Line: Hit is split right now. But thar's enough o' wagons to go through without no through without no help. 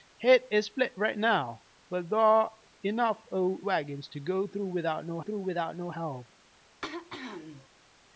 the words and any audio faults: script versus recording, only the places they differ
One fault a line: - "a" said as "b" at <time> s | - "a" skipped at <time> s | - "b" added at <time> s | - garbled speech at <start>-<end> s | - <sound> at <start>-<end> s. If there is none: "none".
- throat clearing at 6.8-7.7 s